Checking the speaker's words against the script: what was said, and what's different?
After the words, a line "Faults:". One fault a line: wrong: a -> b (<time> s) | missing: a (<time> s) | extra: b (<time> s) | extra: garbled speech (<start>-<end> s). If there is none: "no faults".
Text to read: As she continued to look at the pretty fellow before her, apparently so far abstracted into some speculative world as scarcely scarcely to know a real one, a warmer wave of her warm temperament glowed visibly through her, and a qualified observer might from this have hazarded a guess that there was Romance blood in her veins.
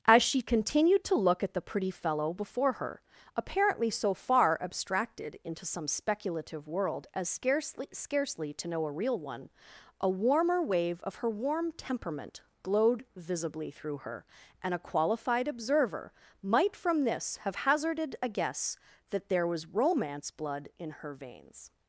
As she continued to look at the pretty fellow before her, apparently so far abstracted into some speculative world as scarcely scarcely to know a real one, a warmer wave of her warm temperament glowed visibly through her, and a qualified observer might from this have hazarded a guess that there was Romance blood in her veins.
Faults:
no faults